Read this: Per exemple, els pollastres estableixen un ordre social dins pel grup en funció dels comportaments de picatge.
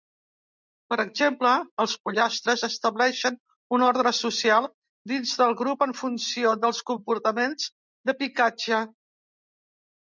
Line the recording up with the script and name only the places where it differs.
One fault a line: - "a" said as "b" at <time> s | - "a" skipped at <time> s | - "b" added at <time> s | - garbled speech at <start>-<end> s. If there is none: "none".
- "pel" said as "del" at 5.4 s